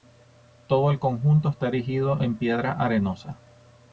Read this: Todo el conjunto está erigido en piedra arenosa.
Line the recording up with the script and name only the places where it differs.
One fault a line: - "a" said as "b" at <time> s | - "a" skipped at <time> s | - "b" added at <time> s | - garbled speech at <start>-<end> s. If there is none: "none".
none